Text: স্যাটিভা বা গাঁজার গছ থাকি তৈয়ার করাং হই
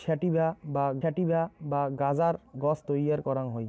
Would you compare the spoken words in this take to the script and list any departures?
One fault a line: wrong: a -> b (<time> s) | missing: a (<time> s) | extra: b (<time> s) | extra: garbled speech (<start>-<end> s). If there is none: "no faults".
extra: স্যাটিভা বা (1.0 s)
missing: থাকি (2.8 s)